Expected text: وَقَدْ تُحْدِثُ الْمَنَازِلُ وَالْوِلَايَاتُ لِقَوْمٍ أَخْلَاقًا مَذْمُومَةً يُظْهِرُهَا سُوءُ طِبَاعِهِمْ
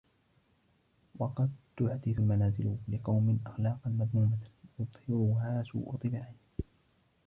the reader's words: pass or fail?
fail